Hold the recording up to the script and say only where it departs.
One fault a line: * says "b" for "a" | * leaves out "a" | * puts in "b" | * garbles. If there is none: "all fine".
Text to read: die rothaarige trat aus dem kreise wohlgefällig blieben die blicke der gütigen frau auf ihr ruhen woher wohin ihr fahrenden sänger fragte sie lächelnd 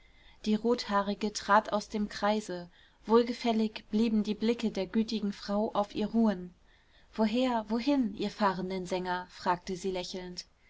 all fine